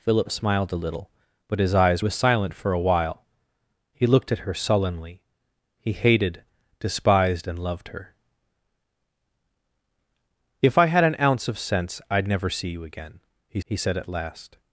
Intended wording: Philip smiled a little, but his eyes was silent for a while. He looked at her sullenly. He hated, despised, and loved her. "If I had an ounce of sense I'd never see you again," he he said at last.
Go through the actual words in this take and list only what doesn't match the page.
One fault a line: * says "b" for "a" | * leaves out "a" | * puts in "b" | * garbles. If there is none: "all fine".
all fine